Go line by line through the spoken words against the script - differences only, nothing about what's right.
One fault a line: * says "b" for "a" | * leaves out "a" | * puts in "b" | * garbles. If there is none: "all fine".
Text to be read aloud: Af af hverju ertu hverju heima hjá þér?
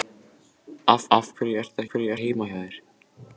all fine